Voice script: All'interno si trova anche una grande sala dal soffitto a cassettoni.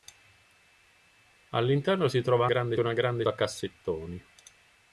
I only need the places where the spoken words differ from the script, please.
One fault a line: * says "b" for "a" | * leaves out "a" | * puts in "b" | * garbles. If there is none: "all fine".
* says "grande" for "anche"
* leaves out "sala dal soffitto"